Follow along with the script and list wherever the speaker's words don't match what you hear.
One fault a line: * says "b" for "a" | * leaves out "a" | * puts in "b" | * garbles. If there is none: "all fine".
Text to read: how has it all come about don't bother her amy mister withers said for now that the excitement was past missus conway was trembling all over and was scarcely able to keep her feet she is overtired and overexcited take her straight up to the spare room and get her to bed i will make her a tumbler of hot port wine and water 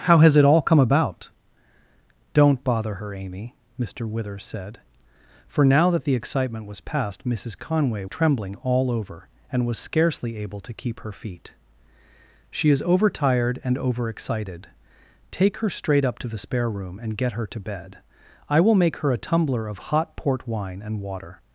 * leaves out "was"